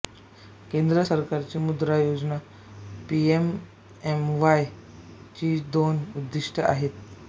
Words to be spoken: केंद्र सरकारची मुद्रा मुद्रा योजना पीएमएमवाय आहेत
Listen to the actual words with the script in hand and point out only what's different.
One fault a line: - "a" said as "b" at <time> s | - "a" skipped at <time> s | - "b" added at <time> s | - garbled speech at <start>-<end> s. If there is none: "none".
- "मुद्रा" skipped at 2.0 s
- "ची दोन उद्दिष्टे" added at 5.4 s